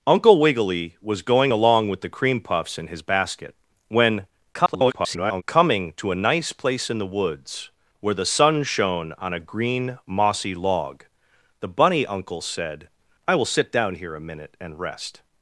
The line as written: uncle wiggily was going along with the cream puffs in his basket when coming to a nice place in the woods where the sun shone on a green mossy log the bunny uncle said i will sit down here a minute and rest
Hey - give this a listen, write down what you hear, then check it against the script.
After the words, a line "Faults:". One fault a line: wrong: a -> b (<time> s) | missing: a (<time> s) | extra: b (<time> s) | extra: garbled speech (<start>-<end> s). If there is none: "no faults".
uncle wiggily was going along with the cream puffs in his basket when [garbled] coming to a nice place in the woods where the sun shone on a green mossy log the bunny uncle said i will sit down here a minute and rest
Faults:
extra: garbled speech (4.5-5.4 s)